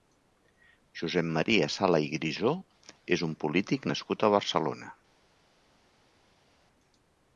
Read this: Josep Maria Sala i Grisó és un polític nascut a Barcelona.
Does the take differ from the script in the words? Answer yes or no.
no